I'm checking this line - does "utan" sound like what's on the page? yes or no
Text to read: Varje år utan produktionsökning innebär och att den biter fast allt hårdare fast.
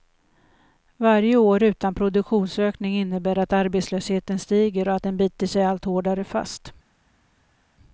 yes